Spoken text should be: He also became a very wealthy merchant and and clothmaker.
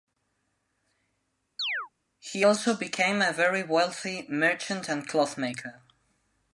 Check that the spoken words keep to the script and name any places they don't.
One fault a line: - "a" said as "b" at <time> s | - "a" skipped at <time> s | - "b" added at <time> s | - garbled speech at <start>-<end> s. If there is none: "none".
- "and" skipped at 5.1 s